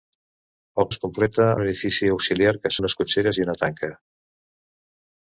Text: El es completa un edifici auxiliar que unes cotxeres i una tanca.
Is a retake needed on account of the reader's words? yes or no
no